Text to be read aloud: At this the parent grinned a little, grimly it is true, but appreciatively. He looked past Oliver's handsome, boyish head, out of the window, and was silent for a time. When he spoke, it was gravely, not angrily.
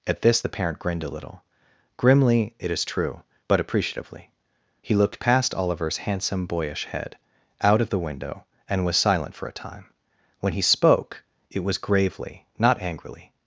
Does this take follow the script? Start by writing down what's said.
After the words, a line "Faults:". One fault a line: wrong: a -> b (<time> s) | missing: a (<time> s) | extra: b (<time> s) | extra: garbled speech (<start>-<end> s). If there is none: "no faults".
At this the parent grinned a little, grimly it is true, but appreciatively. He looked past Oliver's handsome, boyish head, out of the window, and was silent for a time. When he spoke, it was gravely, not angrily.
Faults:
no faults